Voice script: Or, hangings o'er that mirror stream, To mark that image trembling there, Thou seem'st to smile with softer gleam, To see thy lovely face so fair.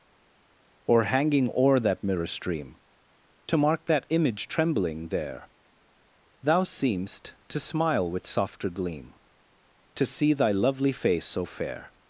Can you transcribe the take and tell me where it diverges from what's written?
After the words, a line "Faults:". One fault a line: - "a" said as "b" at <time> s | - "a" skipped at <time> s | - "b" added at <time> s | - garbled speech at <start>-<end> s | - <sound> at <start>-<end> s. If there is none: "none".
Or, hanging o'er that mirror stream, To mark that image trembling there, Thou seem'st to smile with softer gleam, To see thy lovely face so fair.
Faults:
- "hangings" said as "hanging" at 1.0 s